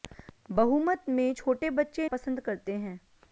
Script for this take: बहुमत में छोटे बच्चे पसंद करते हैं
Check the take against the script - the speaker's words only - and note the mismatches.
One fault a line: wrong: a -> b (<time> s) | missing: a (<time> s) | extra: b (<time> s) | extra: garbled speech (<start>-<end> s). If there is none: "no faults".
no faults